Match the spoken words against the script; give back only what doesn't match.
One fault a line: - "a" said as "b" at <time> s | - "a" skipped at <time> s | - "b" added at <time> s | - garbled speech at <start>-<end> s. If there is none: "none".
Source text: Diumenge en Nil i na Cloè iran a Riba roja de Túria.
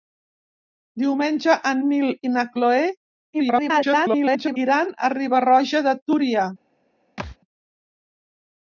- garbled speech at 3.3-4.6 s